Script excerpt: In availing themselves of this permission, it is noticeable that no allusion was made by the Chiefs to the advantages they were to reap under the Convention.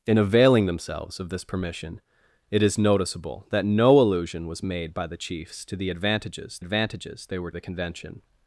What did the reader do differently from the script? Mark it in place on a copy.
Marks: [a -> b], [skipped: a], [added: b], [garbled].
In availing themselves of this permission, it is noticeable that no allusion was made by the Chiefs to the advantages [added: advantages] they were [skipped: to reap under] the Convention.